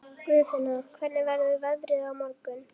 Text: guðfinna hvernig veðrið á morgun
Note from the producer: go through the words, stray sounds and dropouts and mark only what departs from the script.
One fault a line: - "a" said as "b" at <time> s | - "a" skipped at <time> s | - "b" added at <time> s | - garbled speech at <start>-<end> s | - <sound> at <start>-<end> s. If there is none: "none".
- "verður" added at 1.3 s